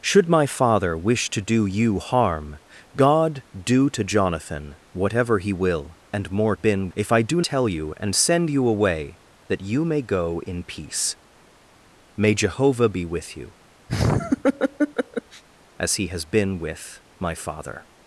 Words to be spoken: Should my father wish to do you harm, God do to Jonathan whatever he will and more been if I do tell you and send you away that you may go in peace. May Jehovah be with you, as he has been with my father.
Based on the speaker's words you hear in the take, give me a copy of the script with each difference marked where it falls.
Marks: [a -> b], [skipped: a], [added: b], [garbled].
Should my father wish to do you harm, God do to Jonathan whatever he will and more been if I do tell you and send you away that you may go in peace. May Jehovah be with you, as he has been with my father.